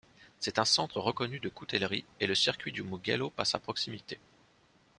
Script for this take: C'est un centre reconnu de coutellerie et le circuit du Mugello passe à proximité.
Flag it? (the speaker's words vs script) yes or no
no